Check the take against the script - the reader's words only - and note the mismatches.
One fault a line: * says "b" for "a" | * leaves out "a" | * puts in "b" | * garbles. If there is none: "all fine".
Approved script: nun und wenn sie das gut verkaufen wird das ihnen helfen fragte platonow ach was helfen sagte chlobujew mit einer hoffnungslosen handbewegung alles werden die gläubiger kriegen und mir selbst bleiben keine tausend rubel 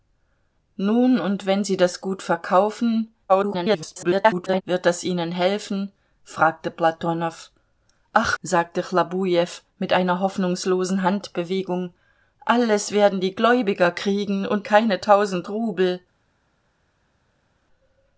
* garbles
* leaves out "was helfen"
* leaves out "mir selbst bleiben"